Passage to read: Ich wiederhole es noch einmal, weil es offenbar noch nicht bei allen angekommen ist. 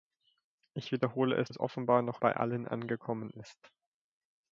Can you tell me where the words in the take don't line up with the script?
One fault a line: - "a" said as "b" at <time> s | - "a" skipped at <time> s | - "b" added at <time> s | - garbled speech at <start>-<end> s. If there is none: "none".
- "noch einmal weil" skipped at 1.5 s
- "nicht" skipped at 2.2 s